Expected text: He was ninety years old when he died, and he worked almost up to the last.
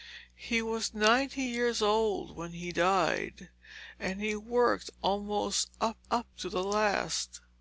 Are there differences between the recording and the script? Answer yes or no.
yes